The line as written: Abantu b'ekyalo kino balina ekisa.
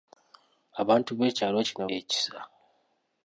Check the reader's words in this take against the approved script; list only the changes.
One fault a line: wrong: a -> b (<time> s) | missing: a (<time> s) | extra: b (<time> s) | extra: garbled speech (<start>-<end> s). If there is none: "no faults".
missing: balina (1.8 s)